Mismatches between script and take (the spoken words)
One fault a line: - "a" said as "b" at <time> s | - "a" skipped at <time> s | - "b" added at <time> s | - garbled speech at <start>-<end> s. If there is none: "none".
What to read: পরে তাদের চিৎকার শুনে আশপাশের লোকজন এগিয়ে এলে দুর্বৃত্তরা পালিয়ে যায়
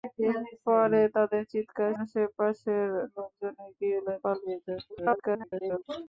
- "শুনে" skipped at 1.9 s
- "দুর্বৃত্তরা" skipped at 4.1 s
- garbled speech at 4.9-5.8 s